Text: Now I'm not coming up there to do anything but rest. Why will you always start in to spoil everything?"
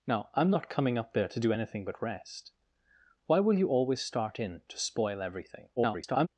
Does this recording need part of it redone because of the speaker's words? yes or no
yes